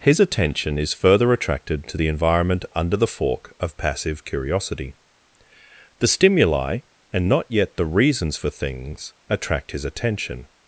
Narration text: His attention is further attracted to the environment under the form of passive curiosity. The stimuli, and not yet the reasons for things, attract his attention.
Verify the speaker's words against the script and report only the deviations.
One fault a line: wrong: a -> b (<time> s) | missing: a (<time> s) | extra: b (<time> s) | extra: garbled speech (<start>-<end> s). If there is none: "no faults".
wrong: form -> fork (3.1 s)